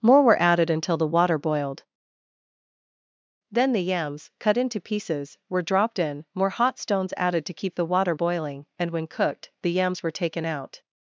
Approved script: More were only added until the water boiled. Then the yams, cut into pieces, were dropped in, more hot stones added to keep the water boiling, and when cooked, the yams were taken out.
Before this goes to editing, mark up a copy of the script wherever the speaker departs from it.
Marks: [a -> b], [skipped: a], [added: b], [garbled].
More were [skipped: only] added until the water boiled. Then the yams, cut into pieces, were dropped in, more hot stones added to keep the water boiling, and when cooked, the yams were taken out.